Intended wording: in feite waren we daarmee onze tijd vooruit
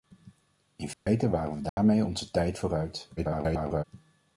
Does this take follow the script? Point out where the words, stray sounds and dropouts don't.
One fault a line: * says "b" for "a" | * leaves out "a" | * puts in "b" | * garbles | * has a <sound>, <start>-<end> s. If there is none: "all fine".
* has a dropout, 0.9-1.1 s
* has a dropout, 1.7-1.8 s
* garbles